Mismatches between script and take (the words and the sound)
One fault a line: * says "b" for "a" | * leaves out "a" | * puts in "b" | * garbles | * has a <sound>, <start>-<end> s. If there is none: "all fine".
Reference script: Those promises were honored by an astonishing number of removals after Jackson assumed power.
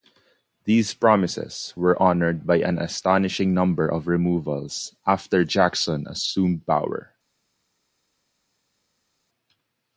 * says "These" for "Those"